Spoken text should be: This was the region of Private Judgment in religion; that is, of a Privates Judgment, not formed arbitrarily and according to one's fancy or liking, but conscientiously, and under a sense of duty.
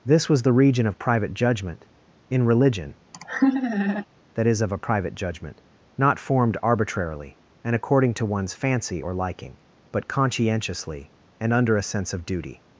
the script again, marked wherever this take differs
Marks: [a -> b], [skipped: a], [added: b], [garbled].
This was the region of Private Judgment in religion; that is, of a [Privates -> Private] Judgment, not formed arbitrarily and according to one's fancy or liking, but conscientiously, and under a sense of duty.